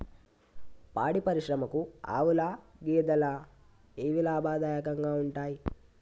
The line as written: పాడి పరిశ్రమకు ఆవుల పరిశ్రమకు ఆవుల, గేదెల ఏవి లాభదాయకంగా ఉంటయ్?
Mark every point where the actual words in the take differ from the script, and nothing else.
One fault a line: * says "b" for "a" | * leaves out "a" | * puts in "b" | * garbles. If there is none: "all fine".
* leaves out "పరిశ్రమకు ఆవుల"